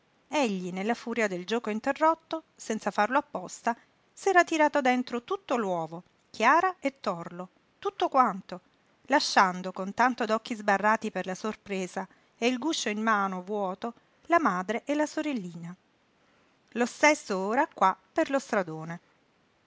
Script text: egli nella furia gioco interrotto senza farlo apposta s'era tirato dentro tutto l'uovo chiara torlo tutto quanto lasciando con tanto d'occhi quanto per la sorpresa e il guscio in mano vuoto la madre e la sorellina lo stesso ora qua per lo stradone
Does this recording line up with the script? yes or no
no